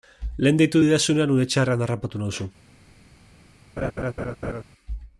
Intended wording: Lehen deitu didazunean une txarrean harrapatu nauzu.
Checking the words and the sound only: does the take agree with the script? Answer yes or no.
no